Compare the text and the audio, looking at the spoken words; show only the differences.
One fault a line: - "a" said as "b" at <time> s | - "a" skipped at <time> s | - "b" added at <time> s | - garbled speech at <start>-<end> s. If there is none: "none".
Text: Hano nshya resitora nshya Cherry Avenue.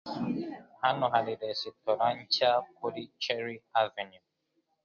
- "nshya" said as "hari" at 1.1 s
- "kuri" added at 2.8 s